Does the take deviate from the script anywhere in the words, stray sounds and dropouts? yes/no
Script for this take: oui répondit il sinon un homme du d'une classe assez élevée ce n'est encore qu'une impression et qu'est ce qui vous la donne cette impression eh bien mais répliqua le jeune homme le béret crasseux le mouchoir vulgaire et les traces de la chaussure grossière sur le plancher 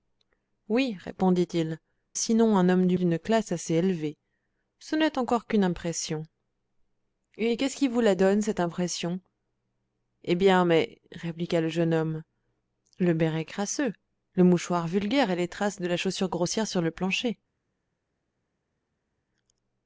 no